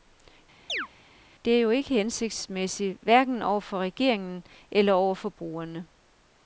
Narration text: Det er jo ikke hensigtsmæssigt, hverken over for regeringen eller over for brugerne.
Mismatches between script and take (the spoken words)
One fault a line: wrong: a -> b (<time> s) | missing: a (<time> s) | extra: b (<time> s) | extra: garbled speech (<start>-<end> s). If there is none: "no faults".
no faults